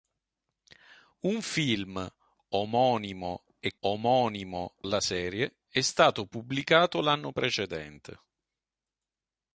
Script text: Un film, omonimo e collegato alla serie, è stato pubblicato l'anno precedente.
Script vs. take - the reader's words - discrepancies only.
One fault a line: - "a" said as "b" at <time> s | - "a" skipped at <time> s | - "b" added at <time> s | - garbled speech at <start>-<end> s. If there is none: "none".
- "collegato" said as "omonimo" at 3.8 s